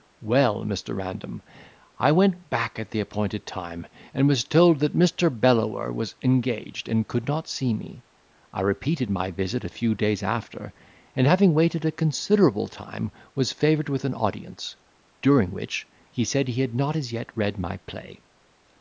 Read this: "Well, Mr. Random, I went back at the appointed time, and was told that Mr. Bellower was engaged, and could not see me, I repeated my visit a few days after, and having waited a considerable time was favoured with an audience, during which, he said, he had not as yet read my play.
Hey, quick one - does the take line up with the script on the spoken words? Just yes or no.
yes